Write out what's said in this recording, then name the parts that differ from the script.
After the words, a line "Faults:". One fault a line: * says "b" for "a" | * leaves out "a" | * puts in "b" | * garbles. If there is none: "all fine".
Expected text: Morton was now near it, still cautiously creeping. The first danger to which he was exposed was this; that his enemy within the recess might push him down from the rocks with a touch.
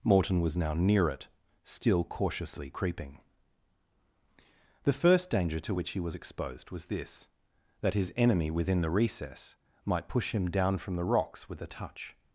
Morton was now near it, still cautiously creeping. The first danger to which he was exposed was this; that his enemy within the recess might push him down from the rocks with a touch.
Faults:
all fine